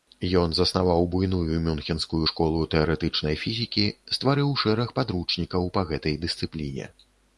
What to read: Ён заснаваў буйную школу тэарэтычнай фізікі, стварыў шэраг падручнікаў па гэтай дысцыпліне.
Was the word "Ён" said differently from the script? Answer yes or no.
no